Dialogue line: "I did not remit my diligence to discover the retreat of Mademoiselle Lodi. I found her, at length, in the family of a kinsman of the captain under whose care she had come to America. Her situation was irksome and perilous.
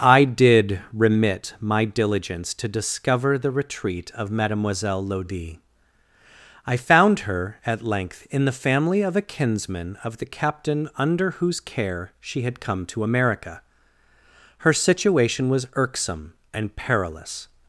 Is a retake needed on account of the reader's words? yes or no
yes